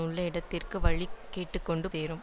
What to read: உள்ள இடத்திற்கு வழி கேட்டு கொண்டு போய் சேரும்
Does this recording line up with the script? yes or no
no